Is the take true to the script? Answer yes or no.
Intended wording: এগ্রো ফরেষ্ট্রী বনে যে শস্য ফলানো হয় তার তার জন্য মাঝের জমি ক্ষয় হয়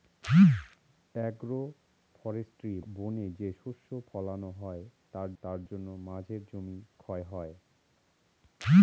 yes